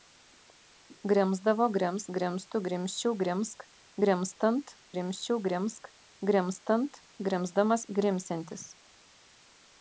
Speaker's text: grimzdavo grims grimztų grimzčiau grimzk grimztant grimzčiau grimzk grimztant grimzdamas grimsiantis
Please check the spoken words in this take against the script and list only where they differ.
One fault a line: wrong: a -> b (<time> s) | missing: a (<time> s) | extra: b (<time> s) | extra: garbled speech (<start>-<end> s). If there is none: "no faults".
no faults